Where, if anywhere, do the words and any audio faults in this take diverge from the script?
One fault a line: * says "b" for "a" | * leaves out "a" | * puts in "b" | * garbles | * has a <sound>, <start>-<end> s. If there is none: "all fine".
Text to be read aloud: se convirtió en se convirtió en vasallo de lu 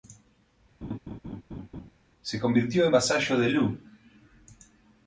* has a laugh, 0.8-1.9 s
* leaves out "se convirtió en"